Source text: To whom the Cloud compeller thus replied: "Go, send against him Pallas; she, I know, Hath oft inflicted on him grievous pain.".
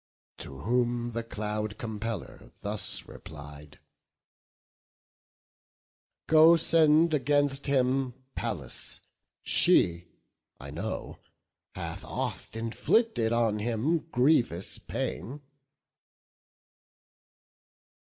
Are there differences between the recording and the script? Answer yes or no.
no